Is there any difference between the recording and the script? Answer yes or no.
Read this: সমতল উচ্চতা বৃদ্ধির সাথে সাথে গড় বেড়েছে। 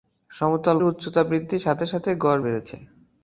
no